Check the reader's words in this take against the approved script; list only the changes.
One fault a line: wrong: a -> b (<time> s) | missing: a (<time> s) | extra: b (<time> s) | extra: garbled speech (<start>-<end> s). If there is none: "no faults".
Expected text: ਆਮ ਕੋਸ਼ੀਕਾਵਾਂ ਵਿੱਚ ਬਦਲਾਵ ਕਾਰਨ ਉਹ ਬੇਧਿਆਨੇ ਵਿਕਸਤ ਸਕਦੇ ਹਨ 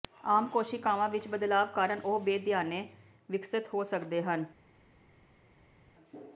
extra: ਹੋ (3.7 s)